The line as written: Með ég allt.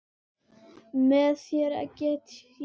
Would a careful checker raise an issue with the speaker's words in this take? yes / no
yes